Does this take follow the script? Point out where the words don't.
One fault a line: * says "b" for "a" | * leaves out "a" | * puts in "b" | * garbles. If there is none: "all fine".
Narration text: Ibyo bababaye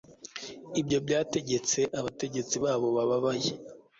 * puts in "byategetse abategetsi babo"